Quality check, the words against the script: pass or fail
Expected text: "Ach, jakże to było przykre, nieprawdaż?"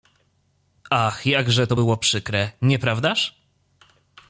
pass